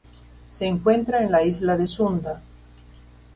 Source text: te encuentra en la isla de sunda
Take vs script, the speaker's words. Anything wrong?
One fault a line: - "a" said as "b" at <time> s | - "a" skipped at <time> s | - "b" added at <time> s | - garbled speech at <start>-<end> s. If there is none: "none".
- "te" said as "se" at 0.5 s